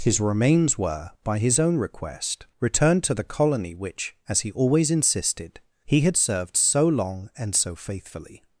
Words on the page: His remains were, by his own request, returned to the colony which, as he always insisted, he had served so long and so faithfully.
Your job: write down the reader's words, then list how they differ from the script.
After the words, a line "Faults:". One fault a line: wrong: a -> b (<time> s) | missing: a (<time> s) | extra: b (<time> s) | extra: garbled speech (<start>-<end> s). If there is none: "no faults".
His remains were, by his own request, returned to the colony which, as he always insisted, he had served so long and so faithfully.
Faults:
no faults